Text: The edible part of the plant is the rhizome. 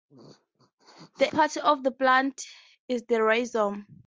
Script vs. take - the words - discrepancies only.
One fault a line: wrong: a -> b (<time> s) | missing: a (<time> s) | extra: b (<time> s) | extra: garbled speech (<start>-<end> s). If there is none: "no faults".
missing: edible (1.3 s)